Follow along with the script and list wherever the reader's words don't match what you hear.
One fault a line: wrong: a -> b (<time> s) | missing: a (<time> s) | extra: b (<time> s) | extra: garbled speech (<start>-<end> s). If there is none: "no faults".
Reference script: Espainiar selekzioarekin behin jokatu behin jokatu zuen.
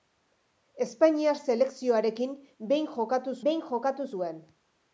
no faults